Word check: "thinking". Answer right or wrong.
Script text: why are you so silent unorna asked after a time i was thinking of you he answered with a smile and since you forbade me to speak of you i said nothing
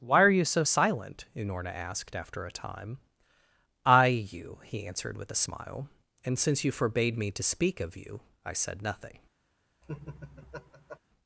wrong